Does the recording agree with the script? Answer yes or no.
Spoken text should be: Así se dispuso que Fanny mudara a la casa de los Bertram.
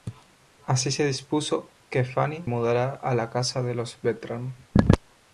yes